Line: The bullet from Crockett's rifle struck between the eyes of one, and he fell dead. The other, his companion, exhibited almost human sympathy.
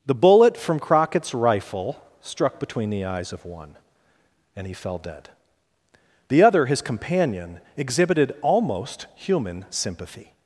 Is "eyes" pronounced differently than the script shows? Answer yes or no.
no